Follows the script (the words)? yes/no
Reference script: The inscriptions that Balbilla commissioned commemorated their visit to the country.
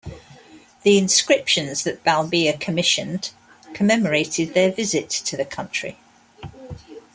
yes